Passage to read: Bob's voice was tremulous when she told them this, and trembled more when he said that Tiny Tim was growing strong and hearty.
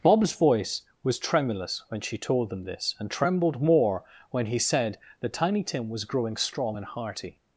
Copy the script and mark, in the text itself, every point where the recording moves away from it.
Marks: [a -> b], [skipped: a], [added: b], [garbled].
Bob's voice was tremulous when she told them this, and trembled more when he said that Tiny Tim was growing strong and hearty.